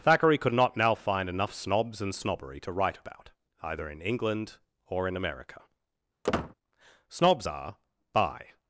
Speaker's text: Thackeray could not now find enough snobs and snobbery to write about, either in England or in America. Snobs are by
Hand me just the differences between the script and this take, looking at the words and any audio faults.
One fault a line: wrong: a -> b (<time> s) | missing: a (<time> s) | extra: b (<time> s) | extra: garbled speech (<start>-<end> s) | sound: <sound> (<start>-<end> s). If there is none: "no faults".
sound: squeak (6.2-6.5 s)